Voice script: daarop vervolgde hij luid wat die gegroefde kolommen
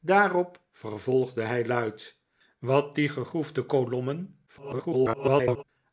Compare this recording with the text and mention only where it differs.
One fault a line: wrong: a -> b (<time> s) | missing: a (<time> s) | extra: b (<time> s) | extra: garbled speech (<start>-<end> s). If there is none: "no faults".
extra: garbled speech (4.5-5.6 s)